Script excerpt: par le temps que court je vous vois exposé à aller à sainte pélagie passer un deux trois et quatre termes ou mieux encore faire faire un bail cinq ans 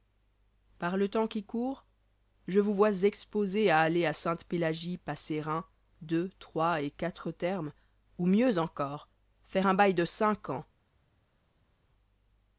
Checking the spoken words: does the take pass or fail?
fail